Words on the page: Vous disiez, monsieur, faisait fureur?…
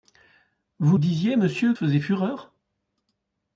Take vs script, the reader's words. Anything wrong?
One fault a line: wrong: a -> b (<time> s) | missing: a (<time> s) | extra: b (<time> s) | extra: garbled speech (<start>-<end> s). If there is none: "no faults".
no faults